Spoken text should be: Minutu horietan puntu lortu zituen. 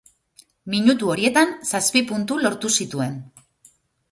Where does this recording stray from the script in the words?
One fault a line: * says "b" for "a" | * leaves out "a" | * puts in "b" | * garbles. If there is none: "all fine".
* puts in "zazpi"